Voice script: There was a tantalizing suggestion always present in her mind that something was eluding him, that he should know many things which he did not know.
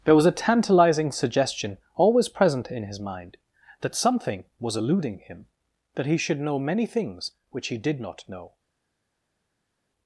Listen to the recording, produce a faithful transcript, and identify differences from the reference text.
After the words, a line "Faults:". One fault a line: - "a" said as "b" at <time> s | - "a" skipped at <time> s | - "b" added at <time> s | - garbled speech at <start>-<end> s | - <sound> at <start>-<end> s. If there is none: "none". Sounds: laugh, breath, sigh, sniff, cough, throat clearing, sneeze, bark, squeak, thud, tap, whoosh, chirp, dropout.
There was a tantalizing suggestion always present in his mind that something was eluding him, that he should know many things which he did not know.
Faults:
- "her" said as "his" at 2.9 s